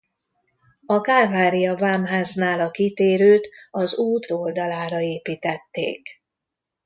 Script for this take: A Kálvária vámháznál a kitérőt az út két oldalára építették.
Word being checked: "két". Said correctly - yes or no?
no